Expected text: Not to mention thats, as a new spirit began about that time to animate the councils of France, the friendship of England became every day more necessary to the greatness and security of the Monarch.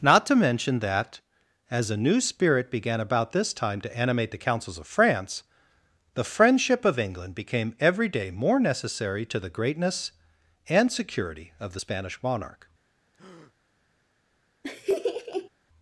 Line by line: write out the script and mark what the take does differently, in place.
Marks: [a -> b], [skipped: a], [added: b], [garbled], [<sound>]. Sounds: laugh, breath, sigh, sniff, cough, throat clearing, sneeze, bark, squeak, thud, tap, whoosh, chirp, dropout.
Not to mention [thats, -> that] as a new spirit began about [that -> this] time to animate the councils of France, the friendship of England became every day more necessary to the greatness and security of the [added: Spanish] Monarch. [breath] [laugh]